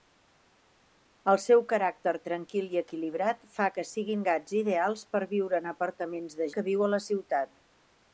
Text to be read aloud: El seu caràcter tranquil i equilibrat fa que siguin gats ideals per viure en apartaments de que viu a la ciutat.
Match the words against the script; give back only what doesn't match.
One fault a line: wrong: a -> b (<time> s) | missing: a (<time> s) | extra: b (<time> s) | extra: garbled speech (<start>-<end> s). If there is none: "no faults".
no faults